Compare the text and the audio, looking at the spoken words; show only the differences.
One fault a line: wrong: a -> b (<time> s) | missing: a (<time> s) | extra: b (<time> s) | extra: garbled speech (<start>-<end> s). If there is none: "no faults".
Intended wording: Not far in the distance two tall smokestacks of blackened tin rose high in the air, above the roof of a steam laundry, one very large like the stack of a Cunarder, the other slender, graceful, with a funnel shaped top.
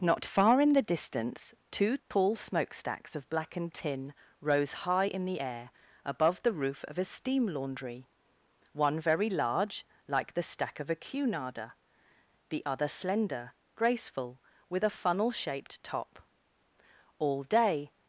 extra: All day (17.2 s)